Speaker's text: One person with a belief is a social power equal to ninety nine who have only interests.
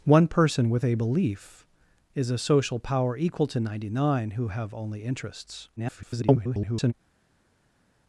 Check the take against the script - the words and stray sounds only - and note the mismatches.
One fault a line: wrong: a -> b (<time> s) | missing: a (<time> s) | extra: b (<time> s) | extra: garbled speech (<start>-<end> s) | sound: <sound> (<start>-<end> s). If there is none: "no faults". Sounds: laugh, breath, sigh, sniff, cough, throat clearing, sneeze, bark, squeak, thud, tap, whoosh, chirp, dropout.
extra: garbled speech (5.8-6.9 s)